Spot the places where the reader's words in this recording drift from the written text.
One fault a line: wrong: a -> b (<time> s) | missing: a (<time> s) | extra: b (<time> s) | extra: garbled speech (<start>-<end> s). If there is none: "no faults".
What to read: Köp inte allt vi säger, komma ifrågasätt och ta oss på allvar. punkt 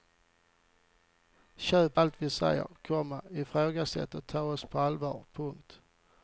missing: inte (2.0 s)